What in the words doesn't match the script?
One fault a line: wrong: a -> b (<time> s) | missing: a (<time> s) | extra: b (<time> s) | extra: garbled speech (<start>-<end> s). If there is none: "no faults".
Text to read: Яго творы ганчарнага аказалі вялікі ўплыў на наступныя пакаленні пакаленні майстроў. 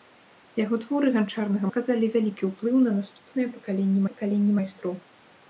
no faults